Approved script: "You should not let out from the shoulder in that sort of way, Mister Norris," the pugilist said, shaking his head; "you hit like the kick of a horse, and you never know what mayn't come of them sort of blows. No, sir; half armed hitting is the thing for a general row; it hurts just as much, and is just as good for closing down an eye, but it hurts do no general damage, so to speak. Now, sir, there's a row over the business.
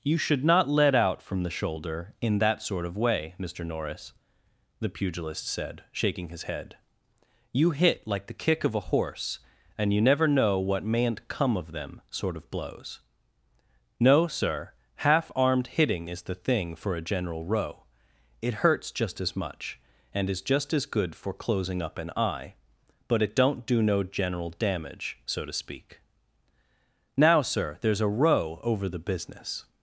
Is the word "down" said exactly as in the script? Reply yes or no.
no